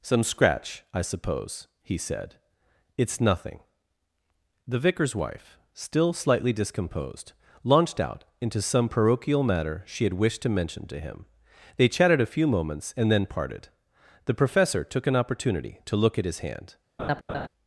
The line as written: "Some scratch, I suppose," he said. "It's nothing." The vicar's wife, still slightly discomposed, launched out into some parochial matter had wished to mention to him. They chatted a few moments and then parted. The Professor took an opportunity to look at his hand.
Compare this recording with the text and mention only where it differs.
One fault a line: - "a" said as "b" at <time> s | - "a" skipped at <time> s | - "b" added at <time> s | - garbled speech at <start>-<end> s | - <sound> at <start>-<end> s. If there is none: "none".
- "she" added at 9.8 s
- laugh at 17.0-17.5 s